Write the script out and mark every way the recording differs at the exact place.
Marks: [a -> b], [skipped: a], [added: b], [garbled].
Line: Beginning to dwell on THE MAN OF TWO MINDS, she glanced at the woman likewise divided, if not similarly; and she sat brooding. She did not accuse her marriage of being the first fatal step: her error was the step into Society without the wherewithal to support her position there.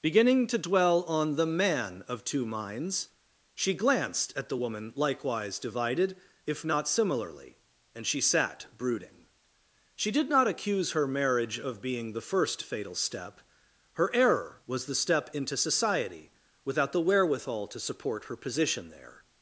Beginning to dwell on THE MAN OF TWO MINDS, she glanced at the woman likewise divided, if not similarly; and she sat brooding. She did not accuse her marriage of being the first fatal step: her error was the step into Society without the wherewithal to support her position there.